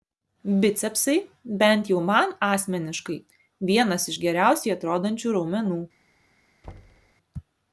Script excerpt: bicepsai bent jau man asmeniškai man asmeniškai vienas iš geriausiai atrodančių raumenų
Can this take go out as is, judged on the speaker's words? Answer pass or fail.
fail